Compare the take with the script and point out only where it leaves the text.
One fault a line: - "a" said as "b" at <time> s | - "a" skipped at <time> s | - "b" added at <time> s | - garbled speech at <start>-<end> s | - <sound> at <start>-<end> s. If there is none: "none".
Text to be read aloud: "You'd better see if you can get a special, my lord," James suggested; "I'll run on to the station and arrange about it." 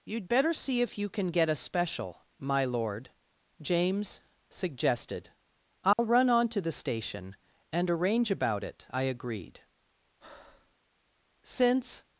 - dropout at 5.9-6.0 s
- "I agreed Since" added at 8.9 s
- breath at 10.2-10.8 s